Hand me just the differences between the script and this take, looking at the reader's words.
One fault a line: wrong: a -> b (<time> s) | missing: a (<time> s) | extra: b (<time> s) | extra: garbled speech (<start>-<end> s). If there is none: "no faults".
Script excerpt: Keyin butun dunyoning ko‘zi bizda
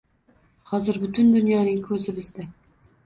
wrong: Keyin -> Hozir (0.7 s)